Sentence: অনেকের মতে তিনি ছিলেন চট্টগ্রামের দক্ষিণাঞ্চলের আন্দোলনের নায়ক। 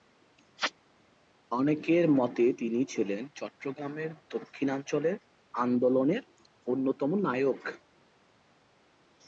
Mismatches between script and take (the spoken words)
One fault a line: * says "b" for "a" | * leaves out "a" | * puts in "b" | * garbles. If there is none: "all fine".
* puts in "অন্যতম"